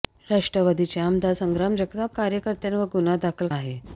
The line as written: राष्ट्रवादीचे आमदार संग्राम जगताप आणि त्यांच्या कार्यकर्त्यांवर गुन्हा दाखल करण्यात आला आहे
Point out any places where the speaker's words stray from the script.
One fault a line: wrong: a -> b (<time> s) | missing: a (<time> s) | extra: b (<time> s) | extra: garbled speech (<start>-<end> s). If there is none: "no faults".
missing: आणि त्यांच्या (2.2 s)
missing: करण्यात आला (3.5 s)